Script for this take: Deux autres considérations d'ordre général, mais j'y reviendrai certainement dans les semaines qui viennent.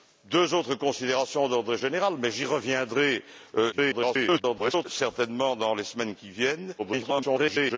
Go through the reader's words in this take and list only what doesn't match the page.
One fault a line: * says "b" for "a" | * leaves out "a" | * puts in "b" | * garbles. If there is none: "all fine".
* garbles
* garbles